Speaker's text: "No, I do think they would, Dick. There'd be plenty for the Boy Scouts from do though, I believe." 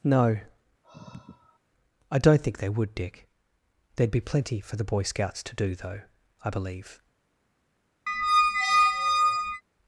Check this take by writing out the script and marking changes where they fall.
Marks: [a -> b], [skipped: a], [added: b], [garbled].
"No, I [do -> don't] think they would, Dick. There'd be plenty for the Boy Scouts [from -> to] do though, I believe."